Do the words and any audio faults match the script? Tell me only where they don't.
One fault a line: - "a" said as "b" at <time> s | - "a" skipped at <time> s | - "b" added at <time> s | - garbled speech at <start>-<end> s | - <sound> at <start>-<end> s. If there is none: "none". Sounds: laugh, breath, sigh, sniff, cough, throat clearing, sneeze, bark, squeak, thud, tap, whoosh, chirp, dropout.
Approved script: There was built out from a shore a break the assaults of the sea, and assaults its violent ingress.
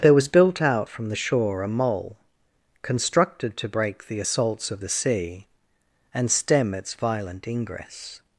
- "a" said as "the" at 1.1 s
- "mole constructed to" added at 1.7 s
- "assaults" said as "stem" at 6.3 s